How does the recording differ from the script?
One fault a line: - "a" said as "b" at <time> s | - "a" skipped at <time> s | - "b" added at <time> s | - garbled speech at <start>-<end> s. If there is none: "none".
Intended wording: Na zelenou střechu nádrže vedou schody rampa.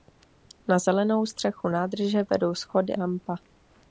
none